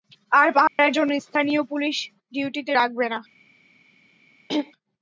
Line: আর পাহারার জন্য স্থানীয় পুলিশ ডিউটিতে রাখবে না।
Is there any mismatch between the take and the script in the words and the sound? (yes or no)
yes